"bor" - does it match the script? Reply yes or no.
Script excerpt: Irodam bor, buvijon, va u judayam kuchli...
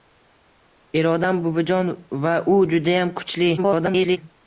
no